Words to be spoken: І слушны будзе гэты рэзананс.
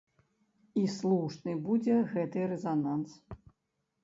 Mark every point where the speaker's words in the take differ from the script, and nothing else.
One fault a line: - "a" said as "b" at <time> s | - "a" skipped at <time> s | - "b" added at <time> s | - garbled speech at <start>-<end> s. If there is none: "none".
none